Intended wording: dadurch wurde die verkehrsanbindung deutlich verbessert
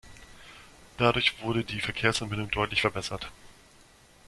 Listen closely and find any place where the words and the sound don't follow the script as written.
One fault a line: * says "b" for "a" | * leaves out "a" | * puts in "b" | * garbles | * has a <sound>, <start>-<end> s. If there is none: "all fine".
all fine